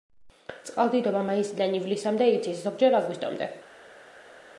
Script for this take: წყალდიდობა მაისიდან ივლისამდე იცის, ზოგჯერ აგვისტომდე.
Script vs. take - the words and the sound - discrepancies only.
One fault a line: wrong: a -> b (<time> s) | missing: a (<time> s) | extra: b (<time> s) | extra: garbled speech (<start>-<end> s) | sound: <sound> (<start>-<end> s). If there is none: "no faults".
no faults